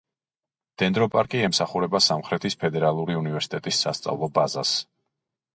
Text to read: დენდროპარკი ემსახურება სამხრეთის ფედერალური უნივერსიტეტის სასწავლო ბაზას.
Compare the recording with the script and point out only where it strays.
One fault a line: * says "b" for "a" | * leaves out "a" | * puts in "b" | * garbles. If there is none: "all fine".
all fine